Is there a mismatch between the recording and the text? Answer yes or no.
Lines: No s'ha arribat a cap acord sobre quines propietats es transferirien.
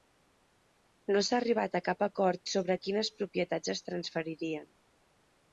no